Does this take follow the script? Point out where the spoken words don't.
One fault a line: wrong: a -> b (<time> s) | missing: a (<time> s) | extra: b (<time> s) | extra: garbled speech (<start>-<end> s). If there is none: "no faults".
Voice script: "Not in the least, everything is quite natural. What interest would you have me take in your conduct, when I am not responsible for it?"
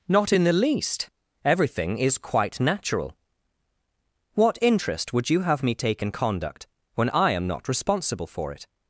missing: your (6.1 s)